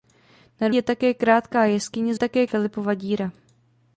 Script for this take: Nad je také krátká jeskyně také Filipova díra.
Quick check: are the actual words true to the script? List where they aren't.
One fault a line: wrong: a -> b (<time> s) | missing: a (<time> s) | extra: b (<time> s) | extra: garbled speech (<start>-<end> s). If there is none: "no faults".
no faults